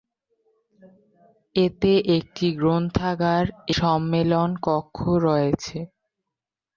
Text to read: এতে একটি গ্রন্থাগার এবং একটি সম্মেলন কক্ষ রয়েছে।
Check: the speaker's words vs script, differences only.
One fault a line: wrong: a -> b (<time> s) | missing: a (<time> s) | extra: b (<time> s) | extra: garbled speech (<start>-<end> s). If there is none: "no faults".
missing: এবং একটি (3.5 s)